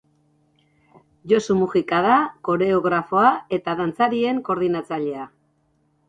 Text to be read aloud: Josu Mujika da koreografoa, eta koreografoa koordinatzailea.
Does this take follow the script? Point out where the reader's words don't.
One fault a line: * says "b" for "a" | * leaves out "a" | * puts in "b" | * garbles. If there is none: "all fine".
* says "dantzarien" for "koreografoa"